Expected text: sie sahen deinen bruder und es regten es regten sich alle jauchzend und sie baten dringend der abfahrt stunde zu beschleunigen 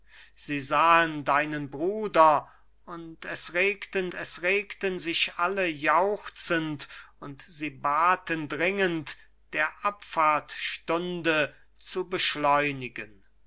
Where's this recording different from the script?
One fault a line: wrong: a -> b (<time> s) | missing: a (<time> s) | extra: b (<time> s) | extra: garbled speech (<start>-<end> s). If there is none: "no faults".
no faults